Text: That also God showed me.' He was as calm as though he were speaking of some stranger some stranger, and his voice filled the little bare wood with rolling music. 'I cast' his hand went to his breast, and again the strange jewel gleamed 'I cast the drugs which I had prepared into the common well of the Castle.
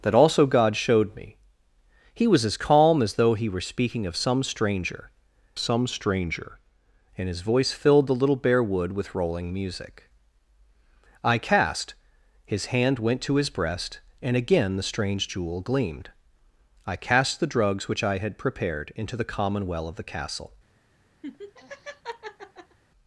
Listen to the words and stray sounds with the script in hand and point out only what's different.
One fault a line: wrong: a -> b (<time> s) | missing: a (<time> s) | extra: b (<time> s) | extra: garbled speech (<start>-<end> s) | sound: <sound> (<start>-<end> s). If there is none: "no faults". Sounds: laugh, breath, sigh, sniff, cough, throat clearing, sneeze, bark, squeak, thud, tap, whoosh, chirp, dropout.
sound: laugh (21.2-22.8 s)